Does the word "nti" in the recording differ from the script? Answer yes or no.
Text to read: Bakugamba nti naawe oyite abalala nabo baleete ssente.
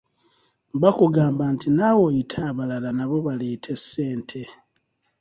no